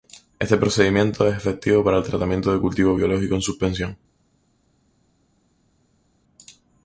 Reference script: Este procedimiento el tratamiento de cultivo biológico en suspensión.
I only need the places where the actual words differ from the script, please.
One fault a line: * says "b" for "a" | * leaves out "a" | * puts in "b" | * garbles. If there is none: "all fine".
* puts in "es efectivo para"